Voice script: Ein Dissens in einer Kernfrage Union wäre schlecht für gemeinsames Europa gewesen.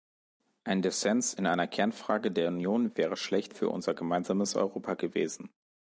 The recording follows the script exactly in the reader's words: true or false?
false